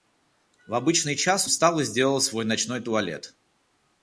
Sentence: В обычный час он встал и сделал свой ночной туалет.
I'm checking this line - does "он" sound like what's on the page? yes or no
no